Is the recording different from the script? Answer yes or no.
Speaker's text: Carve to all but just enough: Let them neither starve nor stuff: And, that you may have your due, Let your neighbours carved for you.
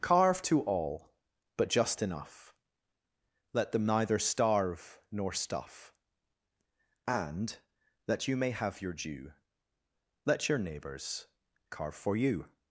yes